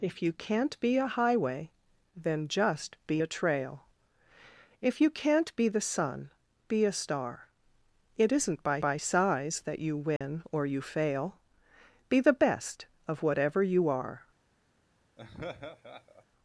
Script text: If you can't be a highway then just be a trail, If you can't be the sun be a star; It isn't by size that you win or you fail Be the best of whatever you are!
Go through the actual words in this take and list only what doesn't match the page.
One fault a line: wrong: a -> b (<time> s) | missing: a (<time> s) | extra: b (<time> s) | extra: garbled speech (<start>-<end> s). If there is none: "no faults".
extra: by (8.8 s)